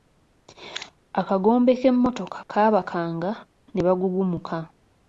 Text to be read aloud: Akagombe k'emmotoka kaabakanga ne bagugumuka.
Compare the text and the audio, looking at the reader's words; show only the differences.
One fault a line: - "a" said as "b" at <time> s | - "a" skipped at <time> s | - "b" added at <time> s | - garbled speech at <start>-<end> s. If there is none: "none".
none